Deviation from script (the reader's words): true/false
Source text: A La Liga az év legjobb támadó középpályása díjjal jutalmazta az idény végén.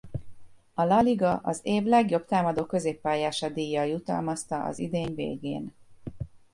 false